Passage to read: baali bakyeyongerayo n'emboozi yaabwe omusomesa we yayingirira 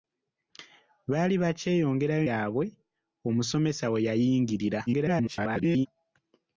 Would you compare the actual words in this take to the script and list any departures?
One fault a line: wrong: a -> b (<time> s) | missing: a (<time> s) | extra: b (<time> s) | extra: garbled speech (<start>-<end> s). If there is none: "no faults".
missing: n'emboozi (2.2 s)
extra: garbled speech (4.9-5.9 s)